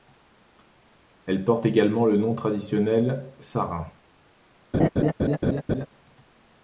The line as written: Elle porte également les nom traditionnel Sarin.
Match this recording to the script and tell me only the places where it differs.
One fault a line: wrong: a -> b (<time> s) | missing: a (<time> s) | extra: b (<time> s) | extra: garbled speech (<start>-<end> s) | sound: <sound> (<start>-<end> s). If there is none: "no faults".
wrong: les -> le (2.1 s)
sound: laugh (4.7-5.9 s)